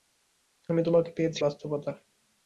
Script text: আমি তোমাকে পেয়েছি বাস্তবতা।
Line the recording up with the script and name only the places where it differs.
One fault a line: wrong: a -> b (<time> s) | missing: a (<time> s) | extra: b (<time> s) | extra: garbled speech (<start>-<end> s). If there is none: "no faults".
no faults